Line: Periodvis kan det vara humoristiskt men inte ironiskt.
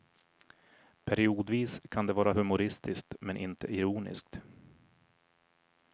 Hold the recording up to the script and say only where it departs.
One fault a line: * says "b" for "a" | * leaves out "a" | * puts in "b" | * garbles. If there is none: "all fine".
all fine